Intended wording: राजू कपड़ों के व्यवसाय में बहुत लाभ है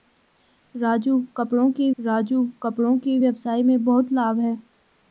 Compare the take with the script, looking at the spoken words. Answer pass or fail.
fail